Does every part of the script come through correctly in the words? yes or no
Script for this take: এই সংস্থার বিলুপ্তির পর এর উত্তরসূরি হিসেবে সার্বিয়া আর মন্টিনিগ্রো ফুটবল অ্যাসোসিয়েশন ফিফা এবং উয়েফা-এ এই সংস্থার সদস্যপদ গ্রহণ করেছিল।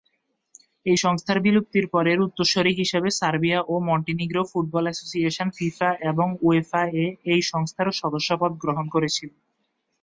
no